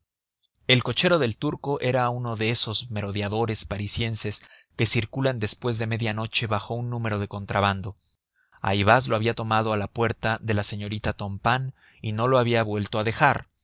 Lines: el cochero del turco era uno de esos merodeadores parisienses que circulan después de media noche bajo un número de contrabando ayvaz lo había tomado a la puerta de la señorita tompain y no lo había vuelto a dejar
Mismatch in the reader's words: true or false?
false